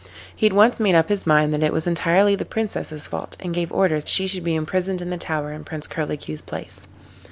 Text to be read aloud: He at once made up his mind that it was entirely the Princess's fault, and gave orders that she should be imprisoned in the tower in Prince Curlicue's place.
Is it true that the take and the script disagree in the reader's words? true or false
true